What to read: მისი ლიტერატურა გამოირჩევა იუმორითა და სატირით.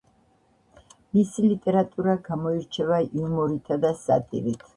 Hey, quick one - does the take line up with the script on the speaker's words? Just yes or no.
yes